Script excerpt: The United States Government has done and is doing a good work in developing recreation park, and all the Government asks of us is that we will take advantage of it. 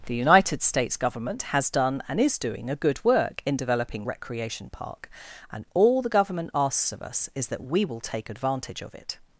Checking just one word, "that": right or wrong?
right